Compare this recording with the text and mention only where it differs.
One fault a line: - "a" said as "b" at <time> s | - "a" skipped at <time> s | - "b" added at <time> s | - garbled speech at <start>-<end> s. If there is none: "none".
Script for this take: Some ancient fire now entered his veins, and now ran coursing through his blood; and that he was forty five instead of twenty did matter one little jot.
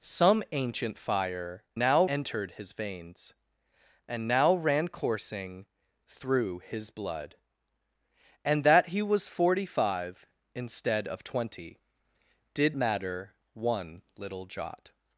none